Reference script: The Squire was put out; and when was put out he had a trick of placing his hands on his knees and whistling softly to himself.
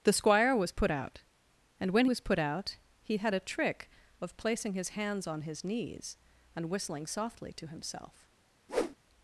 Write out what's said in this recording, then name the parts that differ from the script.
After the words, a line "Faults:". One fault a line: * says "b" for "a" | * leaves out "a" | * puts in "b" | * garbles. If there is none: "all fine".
The Squire was put out; and when was put out he had a trick of placing his hands on his knees and whistling softly to himself.
Faults:
all fine